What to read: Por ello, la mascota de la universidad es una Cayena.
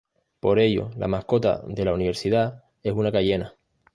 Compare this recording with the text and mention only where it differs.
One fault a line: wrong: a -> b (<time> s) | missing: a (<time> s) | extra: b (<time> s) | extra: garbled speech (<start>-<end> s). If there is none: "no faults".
no faults